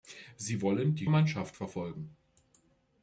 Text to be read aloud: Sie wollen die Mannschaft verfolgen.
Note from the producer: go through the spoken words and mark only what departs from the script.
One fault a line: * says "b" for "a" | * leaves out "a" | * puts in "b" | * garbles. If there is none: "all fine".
all fine